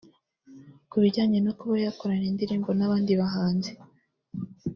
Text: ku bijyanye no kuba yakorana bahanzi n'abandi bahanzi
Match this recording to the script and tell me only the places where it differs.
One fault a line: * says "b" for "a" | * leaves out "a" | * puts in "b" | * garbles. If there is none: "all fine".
* says "indirimbo" for "bahanzi"